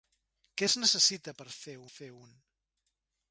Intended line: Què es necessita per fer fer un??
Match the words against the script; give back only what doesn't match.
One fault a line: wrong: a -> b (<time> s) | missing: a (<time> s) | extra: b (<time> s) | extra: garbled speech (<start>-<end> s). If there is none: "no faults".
no faults